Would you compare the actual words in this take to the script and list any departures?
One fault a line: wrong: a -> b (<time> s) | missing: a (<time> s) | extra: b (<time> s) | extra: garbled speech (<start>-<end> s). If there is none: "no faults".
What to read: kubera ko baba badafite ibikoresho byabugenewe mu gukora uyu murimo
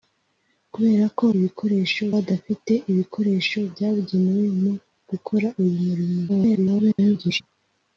wrong: baba -> ibikoresho (1.4 s)
extra: garbled speech (6.3-7.4 s)